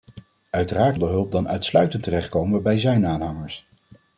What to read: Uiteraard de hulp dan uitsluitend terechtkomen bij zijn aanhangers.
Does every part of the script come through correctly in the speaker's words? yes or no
yes